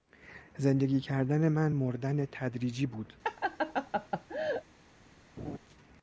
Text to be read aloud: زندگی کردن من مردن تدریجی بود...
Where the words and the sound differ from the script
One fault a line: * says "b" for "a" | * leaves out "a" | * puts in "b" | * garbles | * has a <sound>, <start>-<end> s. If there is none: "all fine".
* has a laugh, 3.2-4.6 s
* has a laugh, 5.4-5.6 s